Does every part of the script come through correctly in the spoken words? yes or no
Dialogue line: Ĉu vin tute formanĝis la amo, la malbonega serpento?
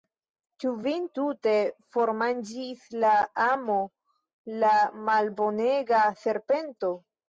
yes